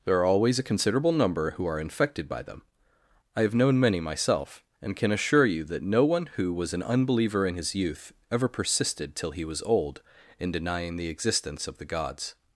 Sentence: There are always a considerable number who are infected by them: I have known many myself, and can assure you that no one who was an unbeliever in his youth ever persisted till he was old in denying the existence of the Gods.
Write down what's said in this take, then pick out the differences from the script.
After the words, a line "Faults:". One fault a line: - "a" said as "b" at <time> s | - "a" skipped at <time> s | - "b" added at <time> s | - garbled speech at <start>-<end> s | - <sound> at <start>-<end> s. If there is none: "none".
There are always a considerable number who are infected by them: I have known many myself, and can assure you that no one who was an unbeliever in his youth ever persisted till he was old in denying the existence of the Gods.
Faults:
none